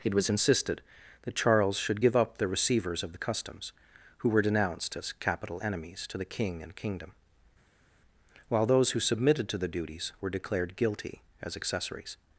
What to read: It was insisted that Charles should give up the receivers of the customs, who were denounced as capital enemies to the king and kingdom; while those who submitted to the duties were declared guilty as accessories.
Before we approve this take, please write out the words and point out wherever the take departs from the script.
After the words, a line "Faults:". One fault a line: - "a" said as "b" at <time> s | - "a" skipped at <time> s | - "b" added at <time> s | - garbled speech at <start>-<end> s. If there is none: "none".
It was insisted that Charles should give up the receivers of the customs, who were denounced as capital enemies to the king and kingdom; while those who submitted to the duties were declared guilty as accessories.
Faults:
none